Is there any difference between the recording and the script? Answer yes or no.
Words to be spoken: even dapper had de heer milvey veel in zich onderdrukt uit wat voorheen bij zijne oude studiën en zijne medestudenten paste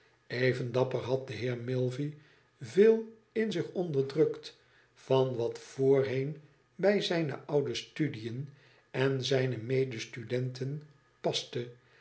yes